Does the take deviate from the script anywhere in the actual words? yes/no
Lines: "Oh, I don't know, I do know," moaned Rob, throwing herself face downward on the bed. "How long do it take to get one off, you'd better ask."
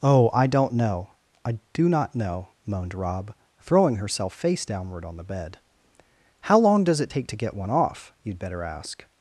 yes